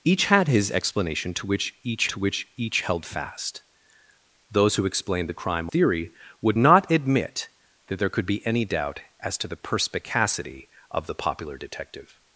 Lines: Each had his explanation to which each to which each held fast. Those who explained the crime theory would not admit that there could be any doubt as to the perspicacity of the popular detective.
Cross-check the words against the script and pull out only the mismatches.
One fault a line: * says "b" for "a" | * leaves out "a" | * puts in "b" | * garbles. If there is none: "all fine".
all fine